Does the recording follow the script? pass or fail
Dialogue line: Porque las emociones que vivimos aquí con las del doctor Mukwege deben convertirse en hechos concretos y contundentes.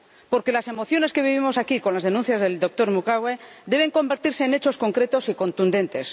fail